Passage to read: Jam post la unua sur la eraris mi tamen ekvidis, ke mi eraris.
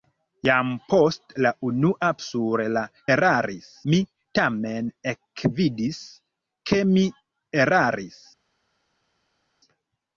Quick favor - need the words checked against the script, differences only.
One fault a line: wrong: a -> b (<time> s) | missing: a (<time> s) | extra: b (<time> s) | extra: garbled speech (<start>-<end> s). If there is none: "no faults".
no faults